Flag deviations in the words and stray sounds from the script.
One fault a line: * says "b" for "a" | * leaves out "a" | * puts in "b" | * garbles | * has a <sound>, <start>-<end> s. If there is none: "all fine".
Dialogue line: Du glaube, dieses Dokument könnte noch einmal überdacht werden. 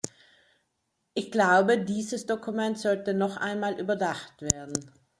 * says "Ich" for "Du"
* says "sollte" for "könnte"